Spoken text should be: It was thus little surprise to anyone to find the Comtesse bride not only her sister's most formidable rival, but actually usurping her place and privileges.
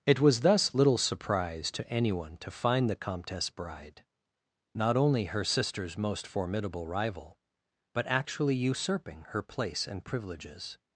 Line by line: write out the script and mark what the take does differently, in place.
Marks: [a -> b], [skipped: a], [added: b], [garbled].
It was thus little surprise to anyone to find the Comtesse bride not only her sister's most formidable rival, but actually usurping her place and privileges.